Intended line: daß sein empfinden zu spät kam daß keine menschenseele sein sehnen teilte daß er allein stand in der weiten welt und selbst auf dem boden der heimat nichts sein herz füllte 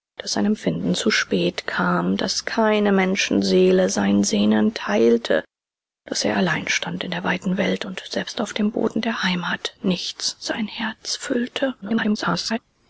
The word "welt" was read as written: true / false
true